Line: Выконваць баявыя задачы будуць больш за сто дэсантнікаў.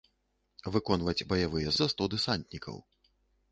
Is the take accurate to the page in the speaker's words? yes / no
no